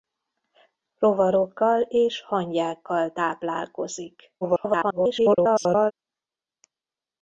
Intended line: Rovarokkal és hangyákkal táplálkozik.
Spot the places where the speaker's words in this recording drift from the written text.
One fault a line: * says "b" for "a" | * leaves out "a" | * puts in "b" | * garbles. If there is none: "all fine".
* garbles